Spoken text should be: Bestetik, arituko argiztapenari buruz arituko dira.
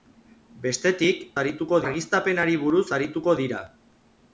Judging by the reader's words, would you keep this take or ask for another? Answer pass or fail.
pass